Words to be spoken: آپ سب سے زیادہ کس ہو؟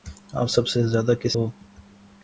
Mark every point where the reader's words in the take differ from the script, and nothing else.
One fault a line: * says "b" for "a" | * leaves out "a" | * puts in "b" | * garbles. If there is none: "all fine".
all fine